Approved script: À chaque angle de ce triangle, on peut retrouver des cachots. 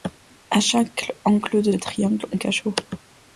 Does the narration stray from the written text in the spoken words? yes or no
yes